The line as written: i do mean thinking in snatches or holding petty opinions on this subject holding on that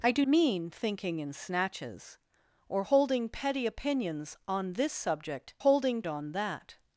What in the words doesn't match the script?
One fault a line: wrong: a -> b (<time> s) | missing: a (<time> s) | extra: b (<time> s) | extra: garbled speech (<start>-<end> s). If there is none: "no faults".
no faults